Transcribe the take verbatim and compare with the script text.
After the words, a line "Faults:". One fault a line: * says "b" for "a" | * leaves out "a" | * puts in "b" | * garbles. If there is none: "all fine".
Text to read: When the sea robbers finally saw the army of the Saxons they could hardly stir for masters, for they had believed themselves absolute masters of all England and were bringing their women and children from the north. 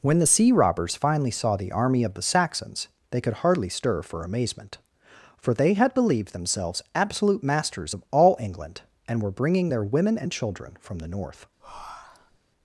When the sea robbers finally saw the army of the Saxons they could hardly stir for amazement, for they had believed themselves absolute masters of all England and were bringing their women and children from the north.
Faults:
* says "amazement" for "masters"